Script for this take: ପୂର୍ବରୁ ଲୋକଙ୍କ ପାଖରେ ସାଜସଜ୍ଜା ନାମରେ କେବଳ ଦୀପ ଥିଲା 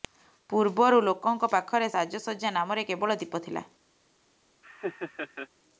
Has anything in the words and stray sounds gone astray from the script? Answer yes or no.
yes